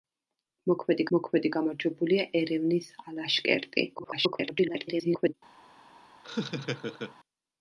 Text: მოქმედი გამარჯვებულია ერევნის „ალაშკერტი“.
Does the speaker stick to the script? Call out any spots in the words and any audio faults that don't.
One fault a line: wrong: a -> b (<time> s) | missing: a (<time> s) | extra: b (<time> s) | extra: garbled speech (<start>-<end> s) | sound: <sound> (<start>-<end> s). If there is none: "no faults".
extra: მოქმედი (1.2 s)
extra: garbled speech (4.0-5.3 s)
sound: laugh (6.2-7.2 s)